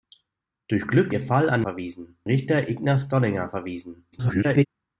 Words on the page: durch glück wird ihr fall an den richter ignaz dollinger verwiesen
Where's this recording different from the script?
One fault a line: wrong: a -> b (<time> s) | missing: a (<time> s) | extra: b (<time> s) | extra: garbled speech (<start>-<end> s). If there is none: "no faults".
missing: wird (1.1 s)
wrong: den -> verwiesen (1.6 s)
extra: garbled speech (4.1-4.7 s)